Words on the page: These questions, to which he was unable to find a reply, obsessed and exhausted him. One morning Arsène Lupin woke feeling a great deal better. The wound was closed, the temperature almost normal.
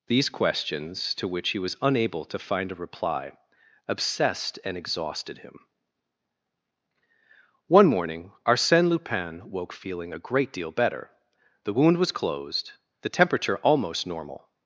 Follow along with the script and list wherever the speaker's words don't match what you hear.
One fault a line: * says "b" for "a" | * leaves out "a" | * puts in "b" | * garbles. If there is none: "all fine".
all fine